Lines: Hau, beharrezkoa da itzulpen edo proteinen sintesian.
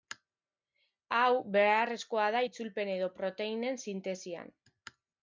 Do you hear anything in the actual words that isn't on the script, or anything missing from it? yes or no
no